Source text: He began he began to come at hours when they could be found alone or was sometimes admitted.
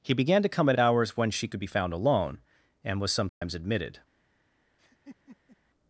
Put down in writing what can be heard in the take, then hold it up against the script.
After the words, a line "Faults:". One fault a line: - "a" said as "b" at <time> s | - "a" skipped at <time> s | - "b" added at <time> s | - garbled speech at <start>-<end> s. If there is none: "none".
He began to come at hours when she could be found alone and was sometimes admitted.
Faults:
- "he began" skipped at 0.4 s
- "they" said as "she" at 1.3 s
- "or" said as "and" at 2.8 s